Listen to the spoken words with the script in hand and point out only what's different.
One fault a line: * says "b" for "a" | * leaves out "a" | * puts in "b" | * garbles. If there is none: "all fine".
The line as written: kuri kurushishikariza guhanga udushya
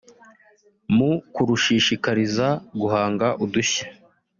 * says "mu" for "kuri"